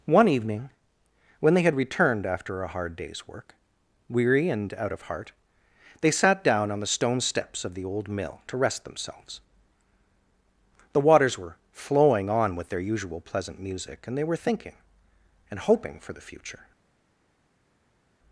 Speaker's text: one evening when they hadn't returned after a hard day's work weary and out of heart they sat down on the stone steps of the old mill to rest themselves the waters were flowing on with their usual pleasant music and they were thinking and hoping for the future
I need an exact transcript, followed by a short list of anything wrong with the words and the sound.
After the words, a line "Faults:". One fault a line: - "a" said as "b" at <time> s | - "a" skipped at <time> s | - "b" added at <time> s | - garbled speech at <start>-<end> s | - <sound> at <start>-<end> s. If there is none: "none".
one evening when they had returned after a hard day's work weary and out of heart they sat down on the stone steps of the old mill to rest themselves the waters were flowing on with their usual pleasant music and they were thinking and hoping for the future
Faults:
- "hadn't" said as "had" at 1.6 s